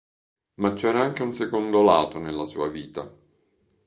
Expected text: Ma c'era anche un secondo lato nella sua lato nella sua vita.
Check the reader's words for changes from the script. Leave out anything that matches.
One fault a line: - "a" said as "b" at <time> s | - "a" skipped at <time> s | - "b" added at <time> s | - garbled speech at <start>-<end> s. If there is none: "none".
- "lato nella sua" skipped at 2.7 s